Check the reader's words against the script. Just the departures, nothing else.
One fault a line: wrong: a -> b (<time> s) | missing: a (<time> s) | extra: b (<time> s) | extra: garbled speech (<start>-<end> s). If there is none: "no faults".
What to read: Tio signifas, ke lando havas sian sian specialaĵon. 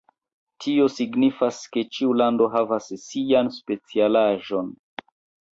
extra: ĉiu (2.0 s)
missing: sian (3.5 s)